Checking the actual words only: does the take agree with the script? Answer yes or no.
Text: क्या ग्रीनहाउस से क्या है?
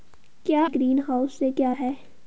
yes